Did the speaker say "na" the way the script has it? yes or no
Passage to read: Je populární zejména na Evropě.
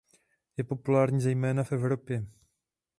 no